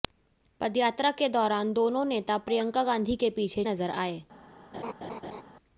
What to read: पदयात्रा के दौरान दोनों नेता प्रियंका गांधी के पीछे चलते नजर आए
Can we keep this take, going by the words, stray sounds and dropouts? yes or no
no